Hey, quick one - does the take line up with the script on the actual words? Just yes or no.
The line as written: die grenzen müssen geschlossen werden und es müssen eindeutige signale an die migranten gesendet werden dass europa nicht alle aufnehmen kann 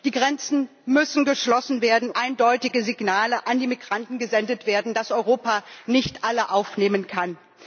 no